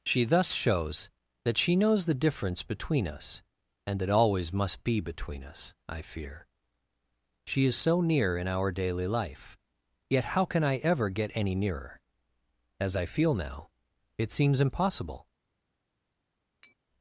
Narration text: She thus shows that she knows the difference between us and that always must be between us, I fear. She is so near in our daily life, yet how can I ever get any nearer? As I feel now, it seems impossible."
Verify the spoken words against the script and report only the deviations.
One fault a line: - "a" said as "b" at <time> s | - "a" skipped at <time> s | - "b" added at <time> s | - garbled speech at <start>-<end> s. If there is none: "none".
none